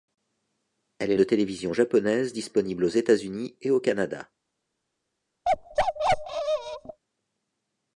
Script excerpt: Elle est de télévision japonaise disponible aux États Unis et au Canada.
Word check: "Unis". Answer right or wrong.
right